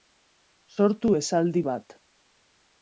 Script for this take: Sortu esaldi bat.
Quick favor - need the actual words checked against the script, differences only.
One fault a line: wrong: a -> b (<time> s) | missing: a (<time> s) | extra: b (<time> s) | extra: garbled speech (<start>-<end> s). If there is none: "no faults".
no faults